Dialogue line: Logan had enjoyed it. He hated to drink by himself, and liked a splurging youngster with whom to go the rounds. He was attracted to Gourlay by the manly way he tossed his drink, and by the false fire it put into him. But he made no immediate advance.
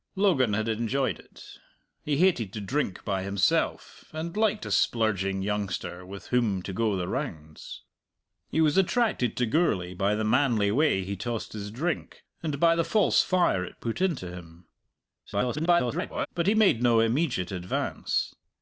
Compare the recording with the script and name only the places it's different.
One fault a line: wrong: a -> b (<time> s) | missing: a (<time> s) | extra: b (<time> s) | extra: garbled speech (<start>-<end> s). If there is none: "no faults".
extra: garbled speech (15.3-16.3 s)